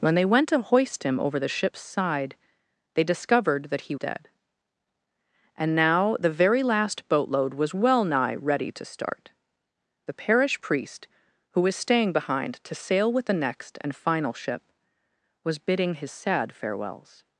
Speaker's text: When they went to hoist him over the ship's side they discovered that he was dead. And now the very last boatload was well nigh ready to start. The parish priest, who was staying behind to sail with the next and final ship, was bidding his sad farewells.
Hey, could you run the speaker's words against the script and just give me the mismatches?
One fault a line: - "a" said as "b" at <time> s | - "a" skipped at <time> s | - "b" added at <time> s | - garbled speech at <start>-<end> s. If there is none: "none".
- "was" skipped at 4.0 s